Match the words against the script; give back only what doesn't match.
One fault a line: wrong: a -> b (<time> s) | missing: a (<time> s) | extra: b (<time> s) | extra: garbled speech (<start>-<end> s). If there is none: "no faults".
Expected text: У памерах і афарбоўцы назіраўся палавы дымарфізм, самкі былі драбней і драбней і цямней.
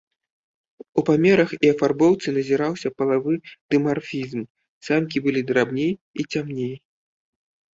missing: драбней і (6.2 s)